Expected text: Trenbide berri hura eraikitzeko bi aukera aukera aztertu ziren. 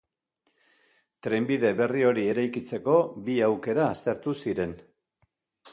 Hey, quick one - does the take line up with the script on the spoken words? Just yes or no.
no